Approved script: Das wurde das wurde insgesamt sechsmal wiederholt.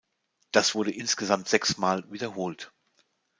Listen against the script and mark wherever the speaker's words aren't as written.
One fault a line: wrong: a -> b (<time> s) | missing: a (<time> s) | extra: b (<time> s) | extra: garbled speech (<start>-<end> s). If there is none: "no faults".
missing: das wurde (0.9 s)